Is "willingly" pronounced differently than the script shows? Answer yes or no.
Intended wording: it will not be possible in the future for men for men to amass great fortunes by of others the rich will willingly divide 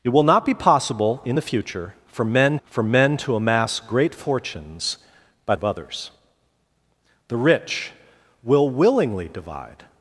no